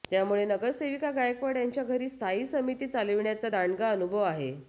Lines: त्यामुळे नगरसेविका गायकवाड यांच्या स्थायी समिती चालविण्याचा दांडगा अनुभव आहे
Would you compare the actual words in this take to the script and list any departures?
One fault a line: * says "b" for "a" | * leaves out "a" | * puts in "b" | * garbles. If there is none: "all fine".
* puts in "घरी"